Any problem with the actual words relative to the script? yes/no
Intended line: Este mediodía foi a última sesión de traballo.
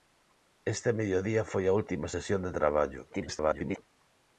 yes